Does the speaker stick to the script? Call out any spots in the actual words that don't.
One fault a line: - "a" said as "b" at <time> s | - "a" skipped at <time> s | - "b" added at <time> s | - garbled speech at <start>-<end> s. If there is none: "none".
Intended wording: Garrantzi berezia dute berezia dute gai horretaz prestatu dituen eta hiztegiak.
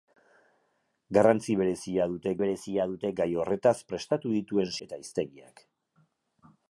none